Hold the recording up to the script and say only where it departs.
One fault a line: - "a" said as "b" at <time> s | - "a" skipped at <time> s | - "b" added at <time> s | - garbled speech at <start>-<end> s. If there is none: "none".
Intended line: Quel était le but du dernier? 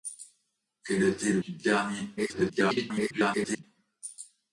- "but" skipped at 1.4 s
- garbled speech at 2.2-3.6 s